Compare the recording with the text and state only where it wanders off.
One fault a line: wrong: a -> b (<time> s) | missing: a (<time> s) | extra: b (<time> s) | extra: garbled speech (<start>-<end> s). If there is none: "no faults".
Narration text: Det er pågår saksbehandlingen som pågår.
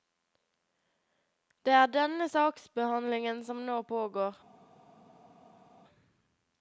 wrong: pågår -> denne (2.0 s)
extra: nå (3.7 s)